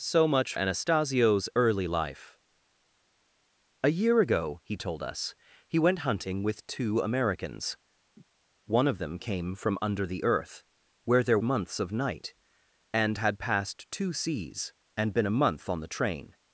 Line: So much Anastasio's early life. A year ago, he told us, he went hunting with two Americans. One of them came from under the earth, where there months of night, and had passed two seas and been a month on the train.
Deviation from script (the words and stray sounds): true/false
true